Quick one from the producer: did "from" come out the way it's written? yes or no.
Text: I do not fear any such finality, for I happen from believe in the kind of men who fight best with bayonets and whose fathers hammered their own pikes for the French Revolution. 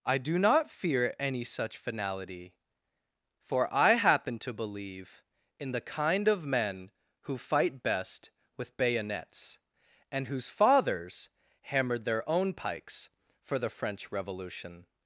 no